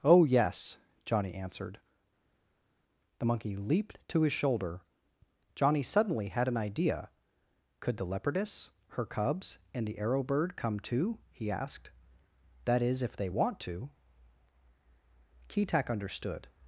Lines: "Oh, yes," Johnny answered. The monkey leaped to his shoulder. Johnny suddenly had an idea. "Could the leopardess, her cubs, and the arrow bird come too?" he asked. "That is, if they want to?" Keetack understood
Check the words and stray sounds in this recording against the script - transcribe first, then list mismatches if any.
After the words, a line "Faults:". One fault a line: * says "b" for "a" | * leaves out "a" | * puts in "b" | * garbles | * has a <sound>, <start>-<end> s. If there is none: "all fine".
"Oh, yes," Johnny answered. The monkey leaped to his shoulder. Johnny suddenly had an idea. "Could the leopardess, her cubs, and the arrow bird come too?" he asked. "That is, if they want to?" Keetack understood
Faults:
all fine